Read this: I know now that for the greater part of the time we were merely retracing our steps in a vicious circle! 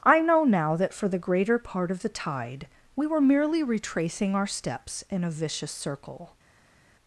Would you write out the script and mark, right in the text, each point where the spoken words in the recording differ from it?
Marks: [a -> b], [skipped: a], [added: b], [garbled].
I know now that for the greater part of the [time -> tide] we were merely retracing our steps in a vicious circle!